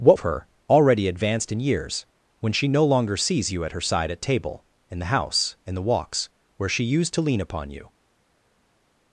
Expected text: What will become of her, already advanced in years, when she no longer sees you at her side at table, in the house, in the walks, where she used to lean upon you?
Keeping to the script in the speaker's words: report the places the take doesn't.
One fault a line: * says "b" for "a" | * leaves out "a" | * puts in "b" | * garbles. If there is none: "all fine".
* leaves out "will become"